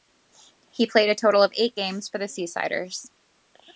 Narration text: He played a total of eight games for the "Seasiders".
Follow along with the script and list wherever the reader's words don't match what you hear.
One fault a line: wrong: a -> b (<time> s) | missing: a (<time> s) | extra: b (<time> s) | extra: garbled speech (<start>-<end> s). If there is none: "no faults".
no faults